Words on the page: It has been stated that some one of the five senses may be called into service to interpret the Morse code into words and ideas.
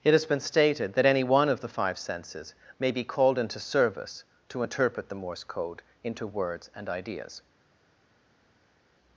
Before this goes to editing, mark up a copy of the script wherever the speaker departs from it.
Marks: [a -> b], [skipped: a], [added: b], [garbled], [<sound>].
It has been stated that [some -> any] one of the five senses may be called into service to interpret the Morse code into words and ideas.